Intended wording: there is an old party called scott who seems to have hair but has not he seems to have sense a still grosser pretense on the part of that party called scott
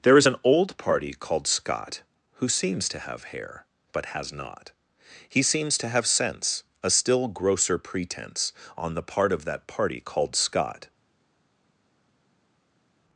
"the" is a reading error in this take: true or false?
false